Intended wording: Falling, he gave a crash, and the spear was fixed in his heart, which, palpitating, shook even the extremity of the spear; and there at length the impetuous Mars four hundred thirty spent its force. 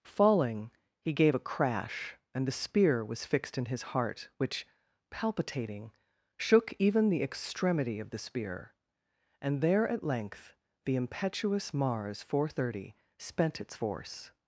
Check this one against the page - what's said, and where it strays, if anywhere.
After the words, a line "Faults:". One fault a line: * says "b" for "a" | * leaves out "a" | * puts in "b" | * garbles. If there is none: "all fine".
Falling, he gave a crash, and the spear was fixed in his heart, which, palpitating, shook even the extremity of the spear; and there at length the impetuous Mars four hundred thirty spent its force.
Faults:
all fine